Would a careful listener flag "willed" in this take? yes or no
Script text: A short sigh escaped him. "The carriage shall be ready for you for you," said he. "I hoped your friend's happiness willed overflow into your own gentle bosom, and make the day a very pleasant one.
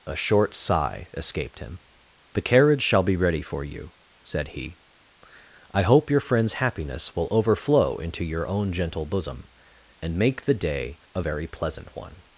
yes